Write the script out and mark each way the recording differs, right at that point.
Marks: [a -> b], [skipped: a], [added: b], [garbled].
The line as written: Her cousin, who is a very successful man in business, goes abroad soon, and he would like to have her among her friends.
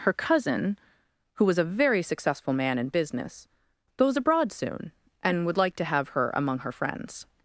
Her cousin, who [is -> was] a very successful man in business, goes abroad soon, and [skipped: he] would like to have her among her friends.